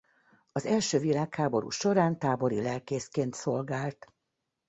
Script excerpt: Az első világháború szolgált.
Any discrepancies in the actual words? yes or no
yes